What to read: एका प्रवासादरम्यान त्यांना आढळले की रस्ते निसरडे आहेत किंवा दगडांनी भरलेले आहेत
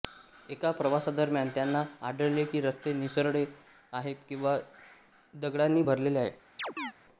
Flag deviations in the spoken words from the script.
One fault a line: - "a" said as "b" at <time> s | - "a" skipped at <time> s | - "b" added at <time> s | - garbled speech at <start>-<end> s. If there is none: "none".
none